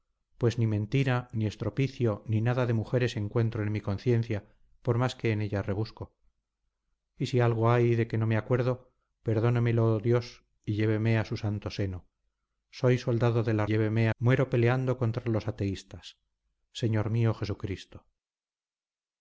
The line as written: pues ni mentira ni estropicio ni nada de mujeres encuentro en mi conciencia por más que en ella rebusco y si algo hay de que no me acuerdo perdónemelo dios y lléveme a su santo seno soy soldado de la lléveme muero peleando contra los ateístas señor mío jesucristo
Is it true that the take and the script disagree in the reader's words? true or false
false